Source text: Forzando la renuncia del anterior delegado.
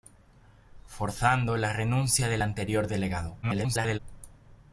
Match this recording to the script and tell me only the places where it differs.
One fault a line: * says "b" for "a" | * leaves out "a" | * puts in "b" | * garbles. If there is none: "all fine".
* garbles